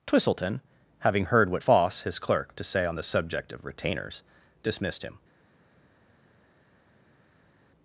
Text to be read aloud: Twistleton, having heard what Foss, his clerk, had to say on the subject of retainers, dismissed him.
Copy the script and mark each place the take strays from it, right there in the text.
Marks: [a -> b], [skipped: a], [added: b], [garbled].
Twistleton, having heard what Foss, his clerk, [skipped: had] to say on the subject of retainers, dismissed him.